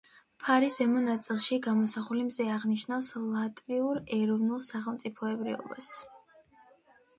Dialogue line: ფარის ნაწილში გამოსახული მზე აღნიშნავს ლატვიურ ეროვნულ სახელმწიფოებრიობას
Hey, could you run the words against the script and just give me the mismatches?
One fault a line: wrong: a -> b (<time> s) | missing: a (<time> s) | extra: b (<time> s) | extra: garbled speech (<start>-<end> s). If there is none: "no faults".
extra: ზემო (0.8 s)